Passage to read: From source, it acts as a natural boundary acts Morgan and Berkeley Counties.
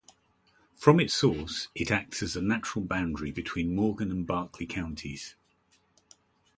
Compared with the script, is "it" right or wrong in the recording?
right